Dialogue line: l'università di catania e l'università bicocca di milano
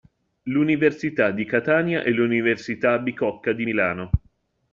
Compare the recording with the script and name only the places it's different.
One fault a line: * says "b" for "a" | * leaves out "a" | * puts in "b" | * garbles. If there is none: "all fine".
all fine